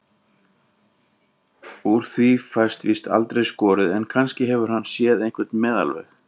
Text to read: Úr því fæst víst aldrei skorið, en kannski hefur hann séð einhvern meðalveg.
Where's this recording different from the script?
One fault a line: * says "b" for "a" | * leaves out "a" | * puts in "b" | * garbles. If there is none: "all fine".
all fine